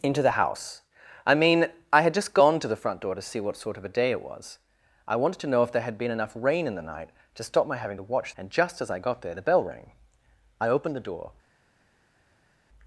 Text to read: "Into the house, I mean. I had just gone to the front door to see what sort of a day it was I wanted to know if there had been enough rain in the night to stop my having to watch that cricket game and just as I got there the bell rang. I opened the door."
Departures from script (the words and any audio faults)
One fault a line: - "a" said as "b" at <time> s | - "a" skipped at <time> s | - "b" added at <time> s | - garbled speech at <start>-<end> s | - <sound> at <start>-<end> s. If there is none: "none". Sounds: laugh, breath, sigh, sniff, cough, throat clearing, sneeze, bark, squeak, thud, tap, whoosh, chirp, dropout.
- "that cricket game" skipped at 8.3 s